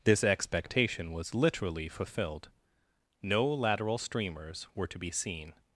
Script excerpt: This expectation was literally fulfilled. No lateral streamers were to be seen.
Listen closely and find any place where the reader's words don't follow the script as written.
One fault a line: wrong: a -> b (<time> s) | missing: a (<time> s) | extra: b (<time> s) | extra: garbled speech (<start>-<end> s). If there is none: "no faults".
no faults